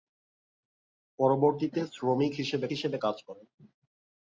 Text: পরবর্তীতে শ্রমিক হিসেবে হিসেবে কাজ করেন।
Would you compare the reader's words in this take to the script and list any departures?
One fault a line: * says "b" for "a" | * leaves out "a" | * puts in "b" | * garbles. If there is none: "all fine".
all fine